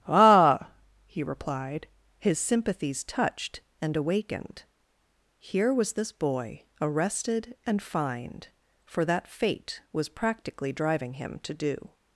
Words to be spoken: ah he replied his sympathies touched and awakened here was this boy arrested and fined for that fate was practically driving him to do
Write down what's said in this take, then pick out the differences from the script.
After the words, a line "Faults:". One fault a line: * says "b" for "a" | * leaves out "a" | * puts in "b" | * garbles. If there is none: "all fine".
ah he replied his sympathies touched and awakened here was this boy arrested and fined for that fate was practically driving him to do
Faults:
all fine